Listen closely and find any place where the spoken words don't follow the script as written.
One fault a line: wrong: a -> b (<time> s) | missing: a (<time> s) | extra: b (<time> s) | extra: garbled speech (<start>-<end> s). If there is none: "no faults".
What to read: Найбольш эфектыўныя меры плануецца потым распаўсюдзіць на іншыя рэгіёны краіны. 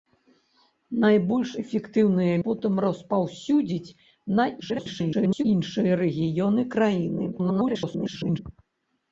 missing: меры плануецца (2.4 s)
extra: garbled speech (4.6-5.5 s)
extra: garbled speech (7.3-8.4 s)